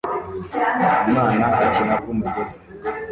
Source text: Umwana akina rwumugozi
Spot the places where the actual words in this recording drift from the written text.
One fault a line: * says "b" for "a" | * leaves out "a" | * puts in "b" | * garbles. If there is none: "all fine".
all fine